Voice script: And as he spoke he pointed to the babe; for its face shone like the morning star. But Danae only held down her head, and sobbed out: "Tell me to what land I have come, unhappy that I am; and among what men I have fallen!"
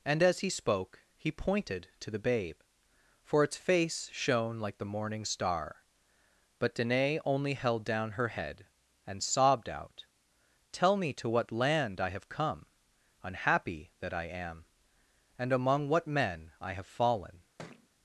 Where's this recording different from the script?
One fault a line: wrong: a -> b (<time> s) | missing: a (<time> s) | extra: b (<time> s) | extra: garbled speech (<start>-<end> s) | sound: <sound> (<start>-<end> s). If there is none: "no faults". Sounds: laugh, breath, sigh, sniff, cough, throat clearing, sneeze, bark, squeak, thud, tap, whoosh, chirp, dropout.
sound: thud (17.6-17.9 s)